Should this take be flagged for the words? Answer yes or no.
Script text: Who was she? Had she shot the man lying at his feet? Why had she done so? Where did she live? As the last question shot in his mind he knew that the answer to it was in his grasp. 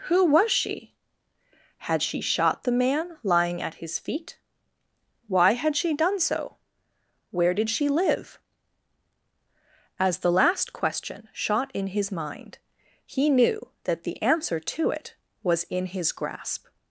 no